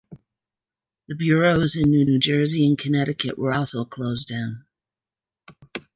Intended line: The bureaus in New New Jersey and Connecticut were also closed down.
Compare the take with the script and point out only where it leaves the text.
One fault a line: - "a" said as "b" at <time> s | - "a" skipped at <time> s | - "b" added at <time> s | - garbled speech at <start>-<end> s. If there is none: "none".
none